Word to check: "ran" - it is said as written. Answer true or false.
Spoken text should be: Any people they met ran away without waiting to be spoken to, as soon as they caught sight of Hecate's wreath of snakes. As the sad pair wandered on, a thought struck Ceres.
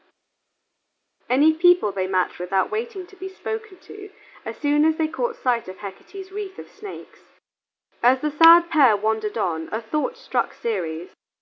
false